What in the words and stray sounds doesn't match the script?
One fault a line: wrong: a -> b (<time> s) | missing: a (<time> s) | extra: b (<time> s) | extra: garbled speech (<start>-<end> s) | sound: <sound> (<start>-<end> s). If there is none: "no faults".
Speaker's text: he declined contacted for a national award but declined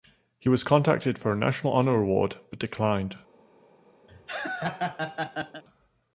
wrong: declined -> was (0.5 s)
extra: honor (1.7 s)
sound: laugh (4.1-5.6 s)